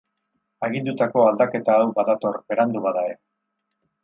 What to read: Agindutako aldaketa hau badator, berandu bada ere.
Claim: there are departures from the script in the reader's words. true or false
false